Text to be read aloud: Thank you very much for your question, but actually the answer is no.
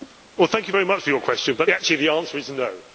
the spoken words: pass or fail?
pass